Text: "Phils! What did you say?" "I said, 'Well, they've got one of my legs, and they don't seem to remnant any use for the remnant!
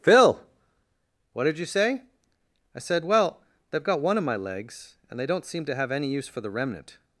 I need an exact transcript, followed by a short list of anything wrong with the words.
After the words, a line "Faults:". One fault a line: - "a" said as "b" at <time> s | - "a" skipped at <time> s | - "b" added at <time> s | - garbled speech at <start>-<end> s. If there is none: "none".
"Phil! What did you say?" "I said, 'Well, they've got one of my legs, and they don't seem to have any use for the remnant!
Faults:
- "Phils" said as "Phil" at 0.0 s
- "remnant" said as "have" at 5.8 s